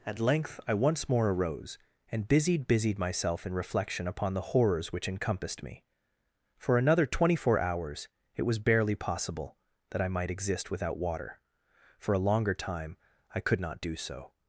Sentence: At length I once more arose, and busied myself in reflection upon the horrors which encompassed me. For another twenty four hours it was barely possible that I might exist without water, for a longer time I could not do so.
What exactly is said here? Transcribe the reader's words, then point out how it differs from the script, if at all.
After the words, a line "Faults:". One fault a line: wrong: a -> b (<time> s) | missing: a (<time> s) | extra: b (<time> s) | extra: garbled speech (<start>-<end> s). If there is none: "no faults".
At length I once more arose, and busied busied myself in reflection upon the horrors which encompassed me. For another twenty four hours it was barely possible that I might exist without water, for a longer time I could not do so.
Faults:
extra: busied (2.7 s)